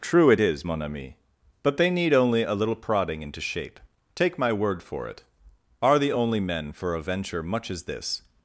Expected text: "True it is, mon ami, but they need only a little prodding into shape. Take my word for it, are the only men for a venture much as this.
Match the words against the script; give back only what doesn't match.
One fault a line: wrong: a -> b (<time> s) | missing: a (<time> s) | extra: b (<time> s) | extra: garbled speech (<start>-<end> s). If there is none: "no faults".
no faults